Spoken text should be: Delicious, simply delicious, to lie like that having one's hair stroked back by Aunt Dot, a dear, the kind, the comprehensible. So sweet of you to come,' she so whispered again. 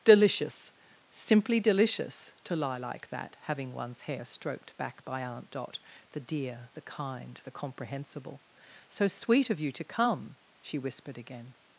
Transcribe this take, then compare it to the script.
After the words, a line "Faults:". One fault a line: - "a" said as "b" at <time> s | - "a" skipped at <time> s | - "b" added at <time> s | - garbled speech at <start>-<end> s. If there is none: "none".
Delicious, simply delicious, to lie like that having one's hair stroked back by Aunt Dot, the dear, the kind, the comprehensible. So sweet of you to come,' she whispered again.
Faults:
- "a" said as "the" at 6.1 s
- "so" skipped at 10.8 s